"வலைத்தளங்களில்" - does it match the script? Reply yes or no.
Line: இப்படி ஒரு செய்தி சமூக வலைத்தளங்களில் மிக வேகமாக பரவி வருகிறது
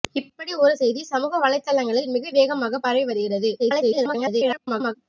yes